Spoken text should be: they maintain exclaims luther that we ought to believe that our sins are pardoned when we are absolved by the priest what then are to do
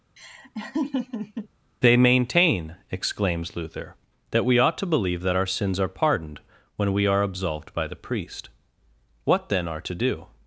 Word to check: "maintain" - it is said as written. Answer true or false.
true